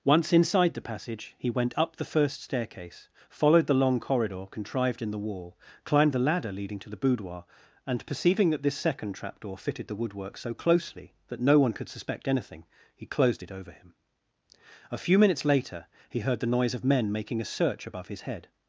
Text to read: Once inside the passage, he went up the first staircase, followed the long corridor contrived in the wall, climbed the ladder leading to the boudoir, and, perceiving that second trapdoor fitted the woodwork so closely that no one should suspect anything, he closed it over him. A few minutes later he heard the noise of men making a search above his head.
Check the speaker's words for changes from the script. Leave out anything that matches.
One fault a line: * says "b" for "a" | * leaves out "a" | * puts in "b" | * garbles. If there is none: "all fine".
* puts in "this"
* says "could" for "should"